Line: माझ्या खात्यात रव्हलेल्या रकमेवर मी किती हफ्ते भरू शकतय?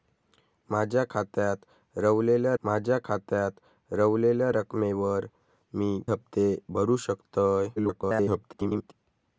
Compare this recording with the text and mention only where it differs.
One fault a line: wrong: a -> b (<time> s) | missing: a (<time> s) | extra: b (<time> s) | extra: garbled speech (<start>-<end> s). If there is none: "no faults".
extra: माझ्या खात्यात रव्हलेल्या (2.6 s)
missing: किती (6.0 s)
extra: garbled speech (7.8-8.9 s)